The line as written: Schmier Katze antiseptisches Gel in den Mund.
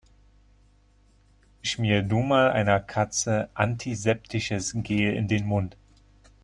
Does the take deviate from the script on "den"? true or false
false